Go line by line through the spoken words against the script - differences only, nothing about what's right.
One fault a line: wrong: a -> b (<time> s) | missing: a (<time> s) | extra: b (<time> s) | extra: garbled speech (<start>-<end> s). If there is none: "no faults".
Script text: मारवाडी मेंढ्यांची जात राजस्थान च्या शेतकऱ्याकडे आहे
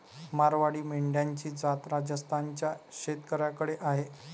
no faults